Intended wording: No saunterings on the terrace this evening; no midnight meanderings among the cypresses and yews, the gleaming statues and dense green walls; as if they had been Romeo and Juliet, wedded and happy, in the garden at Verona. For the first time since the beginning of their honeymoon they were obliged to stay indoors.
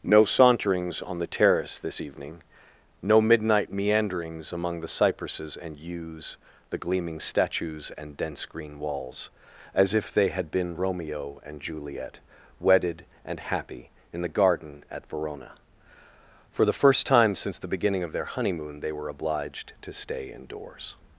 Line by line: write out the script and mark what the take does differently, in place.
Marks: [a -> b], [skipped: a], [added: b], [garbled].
No saunterings on the terrace this evening; no midnight meanderings among the cypresses and yews, the gleaming statues and dense green walls; as if they had been Romeo and Juliet, wedded and happy, in the garden at Verona. For the first time since the beginning of their honeymoon they were obliged to stay indoors.